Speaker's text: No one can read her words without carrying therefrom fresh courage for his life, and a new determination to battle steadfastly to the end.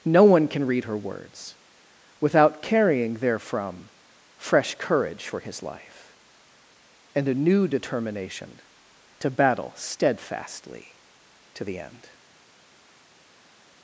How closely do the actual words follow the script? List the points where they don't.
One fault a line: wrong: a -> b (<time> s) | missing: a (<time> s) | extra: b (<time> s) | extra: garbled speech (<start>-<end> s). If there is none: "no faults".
no faults